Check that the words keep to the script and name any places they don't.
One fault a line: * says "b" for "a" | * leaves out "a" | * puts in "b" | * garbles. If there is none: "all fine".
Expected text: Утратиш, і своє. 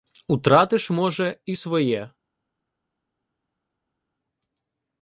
* puts in "може"